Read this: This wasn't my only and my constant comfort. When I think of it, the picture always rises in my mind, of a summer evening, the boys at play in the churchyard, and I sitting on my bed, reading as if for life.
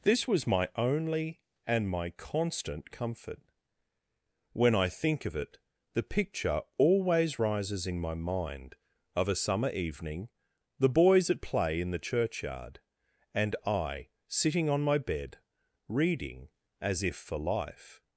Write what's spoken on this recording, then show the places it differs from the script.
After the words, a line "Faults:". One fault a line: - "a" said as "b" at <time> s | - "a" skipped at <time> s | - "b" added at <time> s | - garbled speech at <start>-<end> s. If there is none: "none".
This was my only and my constant comfort. When I think of it, the picture always rises in my mind, of a summer evening, the boys at play in the churchyard, and I sitting on my bed, reading as if for life.
Faults:
- "wasn't" said as "was" at 0.2 s